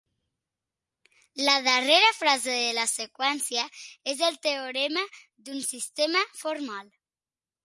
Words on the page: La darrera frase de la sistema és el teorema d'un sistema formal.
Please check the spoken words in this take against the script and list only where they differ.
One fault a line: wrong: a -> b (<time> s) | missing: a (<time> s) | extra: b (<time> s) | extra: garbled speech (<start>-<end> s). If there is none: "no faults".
wrong: sistema -> seqüència (2.9 s)